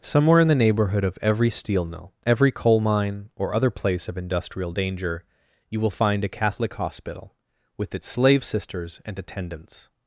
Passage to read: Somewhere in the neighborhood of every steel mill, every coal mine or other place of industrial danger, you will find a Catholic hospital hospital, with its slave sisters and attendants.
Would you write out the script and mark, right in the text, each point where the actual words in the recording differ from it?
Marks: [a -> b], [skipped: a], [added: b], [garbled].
Somewhere in the neighborhood of every steel mill, every coal mine or other place of industrial danger, you will find a Catholic hospital [skipped: hospital,] with its slave sisters and attendants.